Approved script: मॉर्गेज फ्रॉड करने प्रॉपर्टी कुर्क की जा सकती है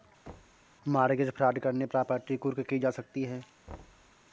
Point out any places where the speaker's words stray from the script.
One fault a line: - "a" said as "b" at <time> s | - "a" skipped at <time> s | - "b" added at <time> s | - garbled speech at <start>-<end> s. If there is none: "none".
none